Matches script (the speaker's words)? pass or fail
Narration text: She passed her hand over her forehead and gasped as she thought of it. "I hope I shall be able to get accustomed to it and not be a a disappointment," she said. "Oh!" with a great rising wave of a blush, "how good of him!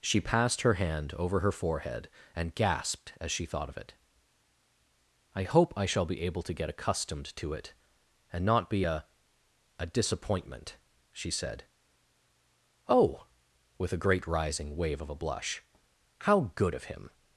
pass